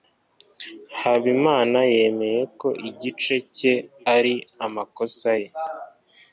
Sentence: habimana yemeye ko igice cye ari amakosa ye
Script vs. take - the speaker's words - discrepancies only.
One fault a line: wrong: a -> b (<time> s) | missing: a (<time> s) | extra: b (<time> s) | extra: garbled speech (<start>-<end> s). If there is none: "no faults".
no faults